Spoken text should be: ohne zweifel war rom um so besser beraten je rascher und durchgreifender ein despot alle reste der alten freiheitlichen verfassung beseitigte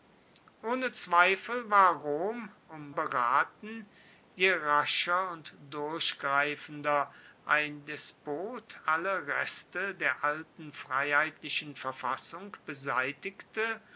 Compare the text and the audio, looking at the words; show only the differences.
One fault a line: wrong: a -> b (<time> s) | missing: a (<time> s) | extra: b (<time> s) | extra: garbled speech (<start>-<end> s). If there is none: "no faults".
missing: so besser (3.0 s)